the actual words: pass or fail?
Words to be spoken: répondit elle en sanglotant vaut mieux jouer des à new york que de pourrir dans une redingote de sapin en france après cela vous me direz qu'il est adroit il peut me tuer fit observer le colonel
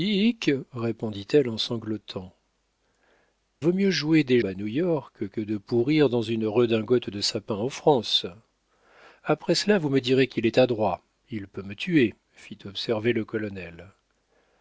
pass